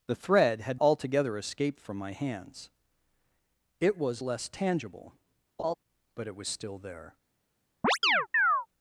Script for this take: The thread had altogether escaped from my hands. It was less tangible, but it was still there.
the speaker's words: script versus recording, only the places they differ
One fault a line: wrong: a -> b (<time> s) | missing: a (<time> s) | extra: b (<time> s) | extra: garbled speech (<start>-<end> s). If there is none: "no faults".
no faults